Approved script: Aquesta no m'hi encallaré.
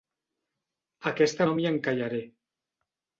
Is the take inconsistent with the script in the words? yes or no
no